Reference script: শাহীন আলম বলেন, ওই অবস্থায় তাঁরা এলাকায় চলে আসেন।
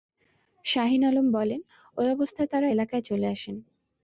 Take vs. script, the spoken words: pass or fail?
pass